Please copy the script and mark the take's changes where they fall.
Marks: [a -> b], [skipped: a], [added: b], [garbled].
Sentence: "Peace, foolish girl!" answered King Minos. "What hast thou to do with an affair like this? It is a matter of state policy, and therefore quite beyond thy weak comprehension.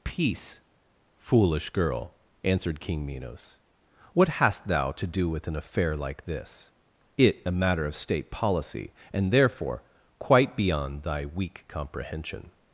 "Peace, foolish girl!" answered King Minos. "What hast thou to do with an affair like this? It [skipped: is] a matter of state policy, and therefore quite beyond thy weak comprehension.